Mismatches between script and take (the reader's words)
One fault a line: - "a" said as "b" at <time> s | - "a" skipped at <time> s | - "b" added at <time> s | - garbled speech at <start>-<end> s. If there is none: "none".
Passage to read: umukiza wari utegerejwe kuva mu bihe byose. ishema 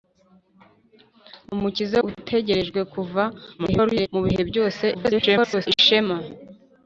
- "wari" skipped at 2.0 s
- garbled speech at 3.6-4.1 s
- garbled speech at 4.9-5.7 s